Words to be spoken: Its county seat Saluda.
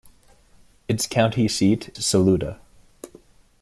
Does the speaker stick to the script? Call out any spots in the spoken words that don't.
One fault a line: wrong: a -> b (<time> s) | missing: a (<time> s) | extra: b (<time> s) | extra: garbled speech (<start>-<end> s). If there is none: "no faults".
no faults